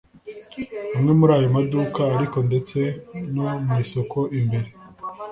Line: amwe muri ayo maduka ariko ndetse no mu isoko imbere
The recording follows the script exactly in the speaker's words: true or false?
true